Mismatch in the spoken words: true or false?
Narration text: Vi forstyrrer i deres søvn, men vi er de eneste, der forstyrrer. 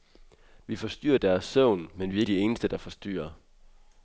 false